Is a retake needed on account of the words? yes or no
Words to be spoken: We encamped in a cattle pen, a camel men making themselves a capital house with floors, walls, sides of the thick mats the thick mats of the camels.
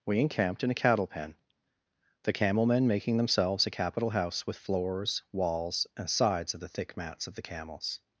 yes